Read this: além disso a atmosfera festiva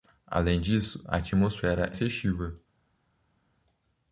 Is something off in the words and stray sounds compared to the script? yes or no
no